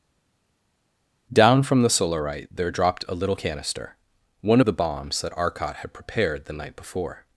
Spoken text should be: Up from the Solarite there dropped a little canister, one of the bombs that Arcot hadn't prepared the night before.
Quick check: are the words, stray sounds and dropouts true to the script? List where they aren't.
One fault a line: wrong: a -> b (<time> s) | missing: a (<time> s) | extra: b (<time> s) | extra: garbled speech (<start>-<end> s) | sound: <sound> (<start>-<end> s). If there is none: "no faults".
wrong: Up -> Down (1.3 s)
wrong: hadn't -> had (5.8 s)